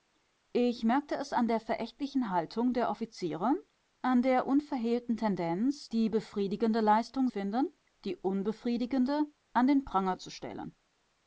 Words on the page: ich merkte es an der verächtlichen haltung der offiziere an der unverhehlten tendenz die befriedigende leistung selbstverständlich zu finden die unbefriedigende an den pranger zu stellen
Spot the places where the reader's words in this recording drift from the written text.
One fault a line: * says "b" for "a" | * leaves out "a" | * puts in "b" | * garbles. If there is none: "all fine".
* leaves out "selbstverständlich zu"